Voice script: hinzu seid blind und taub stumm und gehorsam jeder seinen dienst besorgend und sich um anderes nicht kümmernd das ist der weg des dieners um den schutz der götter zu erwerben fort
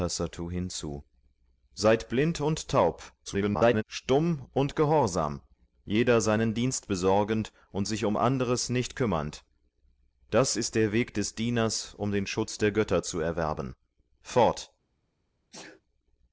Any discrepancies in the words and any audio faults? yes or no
yes